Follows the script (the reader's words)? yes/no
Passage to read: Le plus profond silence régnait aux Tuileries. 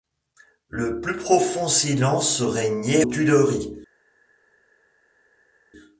no